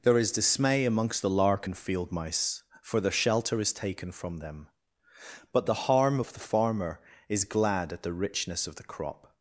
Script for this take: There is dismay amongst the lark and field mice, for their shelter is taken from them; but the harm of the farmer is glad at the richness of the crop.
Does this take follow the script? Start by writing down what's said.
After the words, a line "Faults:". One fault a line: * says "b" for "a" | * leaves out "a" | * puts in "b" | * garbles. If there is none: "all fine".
There is dismay amongst the lark and field mice, for their shelter is taken from them; but the harm of the farmer is glad at the richness of the crop.
Faults:
all fine